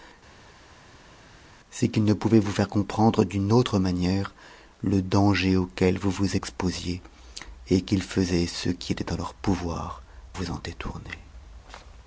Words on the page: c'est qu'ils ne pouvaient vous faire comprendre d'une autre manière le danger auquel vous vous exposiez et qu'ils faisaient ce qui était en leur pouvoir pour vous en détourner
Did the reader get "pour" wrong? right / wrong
wrong